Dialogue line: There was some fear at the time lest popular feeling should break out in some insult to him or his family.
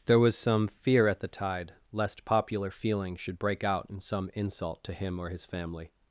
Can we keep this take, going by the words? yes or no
no